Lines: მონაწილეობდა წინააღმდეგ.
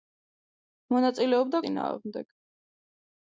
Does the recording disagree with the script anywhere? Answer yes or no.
no